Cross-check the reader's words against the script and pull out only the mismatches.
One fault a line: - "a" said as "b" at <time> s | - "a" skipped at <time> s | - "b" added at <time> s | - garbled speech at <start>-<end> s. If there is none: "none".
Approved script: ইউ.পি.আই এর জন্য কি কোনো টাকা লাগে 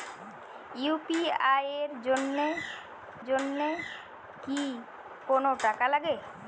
- "জন্য" added at 3.2 s